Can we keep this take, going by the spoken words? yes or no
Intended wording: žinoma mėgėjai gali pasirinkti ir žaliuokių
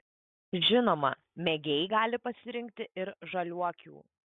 yes